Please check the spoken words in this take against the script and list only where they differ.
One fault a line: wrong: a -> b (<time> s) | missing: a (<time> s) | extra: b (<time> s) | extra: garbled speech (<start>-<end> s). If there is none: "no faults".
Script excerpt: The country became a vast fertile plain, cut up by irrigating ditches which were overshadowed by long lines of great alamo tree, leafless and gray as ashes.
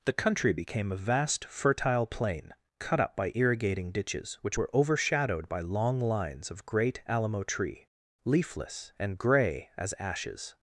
no faults